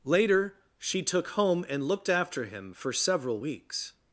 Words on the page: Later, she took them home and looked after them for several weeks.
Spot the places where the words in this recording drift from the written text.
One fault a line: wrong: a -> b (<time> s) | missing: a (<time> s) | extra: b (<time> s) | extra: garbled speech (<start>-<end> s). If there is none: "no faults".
missing: them (1.3 s)
wrong: them -> him (2.5 s)